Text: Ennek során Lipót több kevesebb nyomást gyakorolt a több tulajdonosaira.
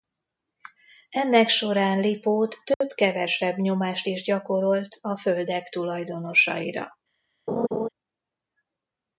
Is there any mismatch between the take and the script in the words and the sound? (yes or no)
yes